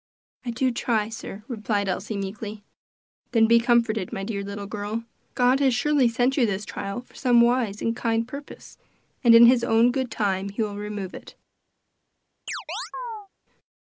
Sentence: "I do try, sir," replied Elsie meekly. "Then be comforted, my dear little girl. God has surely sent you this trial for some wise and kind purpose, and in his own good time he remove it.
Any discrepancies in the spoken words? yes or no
yes